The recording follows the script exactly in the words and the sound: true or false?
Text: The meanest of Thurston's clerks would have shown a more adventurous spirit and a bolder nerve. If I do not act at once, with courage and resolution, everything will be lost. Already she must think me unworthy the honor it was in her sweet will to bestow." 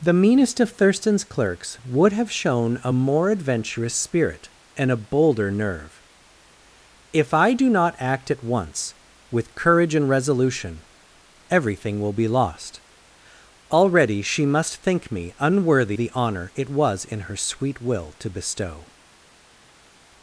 true